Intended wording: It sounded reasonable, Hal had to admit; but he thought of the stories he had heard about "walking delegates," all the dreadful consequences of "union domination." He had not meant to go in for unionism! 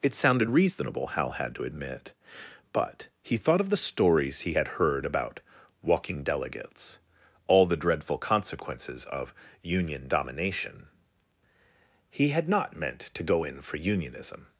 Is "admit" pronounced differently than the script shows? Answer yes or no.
no